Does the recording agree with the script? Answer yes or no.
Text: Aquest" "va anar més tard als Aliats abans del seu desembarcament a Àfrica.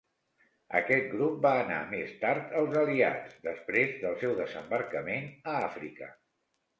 no